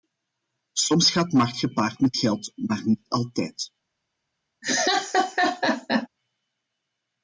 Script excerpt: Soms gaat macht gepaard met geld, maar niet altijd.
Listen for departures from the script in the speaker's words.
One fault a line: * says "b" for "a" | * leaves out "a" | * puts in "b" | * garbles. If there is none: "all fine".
all fine